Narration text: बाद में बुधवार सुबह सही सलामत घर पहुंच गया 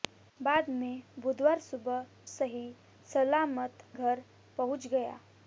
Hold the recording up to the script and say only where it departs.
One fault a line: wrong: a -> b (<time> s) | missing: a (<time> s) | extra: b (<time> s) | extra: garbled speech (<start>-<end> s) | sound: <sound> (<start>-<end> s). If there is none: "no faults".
no faults